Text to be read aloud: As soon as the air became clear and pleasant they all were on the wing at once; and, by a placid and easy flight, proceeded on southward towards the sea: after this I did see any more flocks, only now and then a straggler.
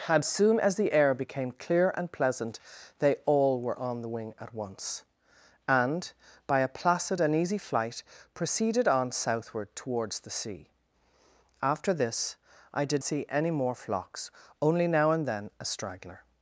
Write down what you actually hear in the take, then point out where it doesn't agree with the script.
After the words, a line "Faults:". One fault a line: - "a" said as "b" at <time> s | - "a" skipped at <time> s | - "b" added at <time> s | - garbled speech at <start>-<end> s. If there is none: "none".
As soon as the air became clear and pleasant they all were on the wing at once; and, by a placid and easy flight, proceeded on southward towards the sea: after this I did see any more flocks, only now and then a straggler.
Faults:
none